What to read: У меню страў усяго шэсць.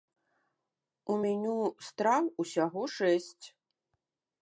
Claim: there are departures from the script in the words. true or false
false